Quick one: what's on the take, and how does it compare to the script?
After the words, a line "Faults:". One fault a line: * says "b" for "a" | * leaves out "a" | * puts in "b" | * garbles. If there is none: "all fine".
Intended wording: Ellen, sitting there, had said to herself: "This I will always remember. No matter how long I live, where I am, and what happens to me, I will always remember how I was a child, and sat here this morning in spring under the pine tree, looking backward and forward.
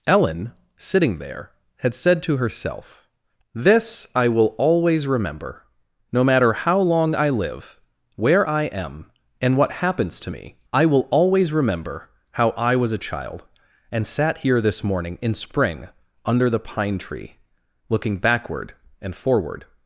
Ellen, sitting there, had said to herself: "This I will always remember. No matter how long I live, where I am, and what happens to me, I will always remember how I was a child, and sat here this morning in spring under the pine tree, looking backward and forward.
Faults:
all fine